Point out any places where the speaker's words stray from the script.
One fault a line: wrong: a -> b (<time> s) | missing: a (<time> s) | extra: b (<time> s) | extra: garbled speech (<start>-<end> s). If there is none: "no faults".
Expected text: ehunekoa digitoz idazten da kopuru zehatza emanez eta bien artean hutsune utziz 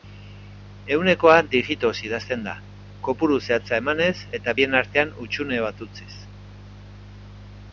extra: bat (5.7 s)